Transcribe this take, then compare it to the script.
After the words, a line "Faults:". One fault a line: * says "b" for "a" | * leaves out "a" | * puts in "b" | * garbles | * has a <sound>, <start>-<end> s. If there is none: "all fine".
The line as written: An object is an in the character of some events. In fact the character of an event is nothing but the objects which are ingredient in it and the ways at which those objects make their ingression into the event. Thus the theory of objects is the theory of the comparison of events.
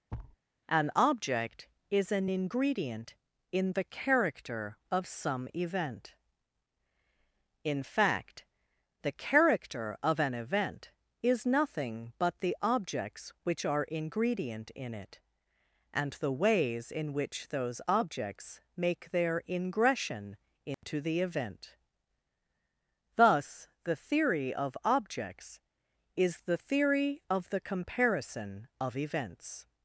An object is an ingredient in the character of some event. In fact the character of an event is nothing but the objects which are ingredient in it and the ways in which those objects make their ingression into the event. Thus the theory of objects is the theory of the comparison of events.
Faults:
* has a thud, 0.1-0.4 s
* puts in "ingredient"
* says "event" for "events"
* says "in" for "at"
* has a dropout, 20.7-20.8 s